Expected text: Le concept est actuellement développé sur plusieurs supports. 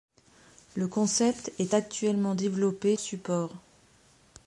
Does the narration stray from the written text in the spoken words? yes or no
yes